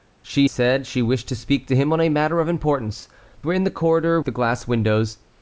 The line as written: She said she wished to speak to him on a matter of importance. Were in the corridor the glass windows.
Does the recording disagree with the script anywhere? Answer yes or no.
no